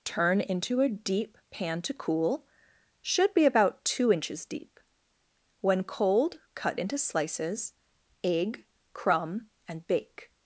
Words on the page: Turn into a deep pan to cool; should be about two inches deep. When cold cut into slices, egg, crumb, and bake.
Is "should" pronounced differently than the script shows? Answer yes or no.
no